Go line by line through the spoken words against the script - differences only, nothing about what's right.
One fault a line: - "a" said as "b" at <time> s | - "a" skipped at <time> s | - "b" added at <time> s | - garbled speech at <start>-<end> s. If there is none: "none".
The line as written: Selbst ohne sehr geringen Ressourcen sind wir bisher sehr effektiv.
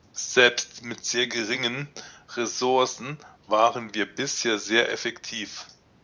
- "ohne" said as "mit" at 0.8 s
- "sind" said as "waren" at 3.5 s